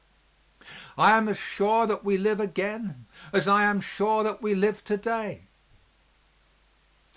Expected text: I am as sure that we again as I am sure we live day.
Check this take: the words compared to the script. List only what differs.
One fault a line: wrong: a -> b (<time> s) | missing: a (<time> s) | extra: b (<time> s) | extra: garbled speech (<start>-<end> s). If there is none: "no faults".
extra: live (2.2 s)
extra: that (4.2 s)
extra: to (4.8 s)